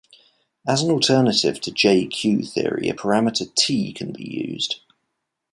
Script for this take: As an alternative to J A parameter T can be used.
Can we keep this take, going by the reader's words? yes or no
no